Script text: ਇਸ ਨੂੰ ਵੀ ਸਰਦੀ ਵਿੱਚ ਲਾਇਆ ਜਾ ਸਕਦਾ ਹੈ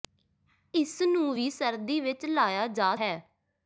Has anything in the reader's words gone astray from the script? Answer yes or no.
yes